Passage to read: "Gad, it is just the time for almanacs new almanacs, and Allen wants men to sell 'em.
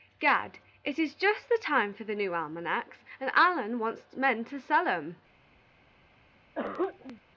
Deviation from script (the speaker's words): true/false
true